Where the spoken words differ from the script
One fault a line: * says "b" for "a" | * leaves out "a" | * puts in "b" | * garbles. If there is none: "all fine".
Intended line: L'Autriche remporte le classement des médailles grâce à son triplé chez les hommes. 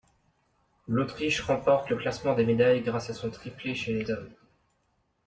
all fine